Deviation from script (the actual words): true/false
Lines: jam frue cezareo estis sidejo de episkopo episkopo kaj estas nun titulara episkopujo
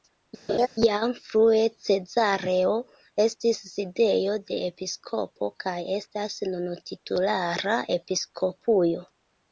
true